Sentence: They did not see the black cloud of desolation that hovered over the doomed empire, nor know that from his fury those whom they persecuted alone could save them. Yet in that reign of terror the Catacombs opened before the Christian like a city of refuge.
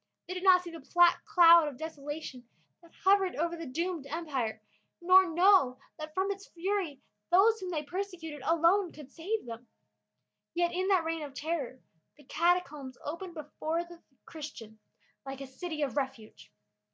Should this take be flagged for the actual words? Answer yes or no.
yes